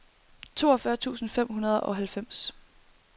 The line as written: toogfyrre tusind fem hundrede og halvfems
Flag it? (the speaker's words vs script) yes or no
no